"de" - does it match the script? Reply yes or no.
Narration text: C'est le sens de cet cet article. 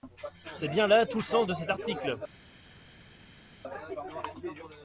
yes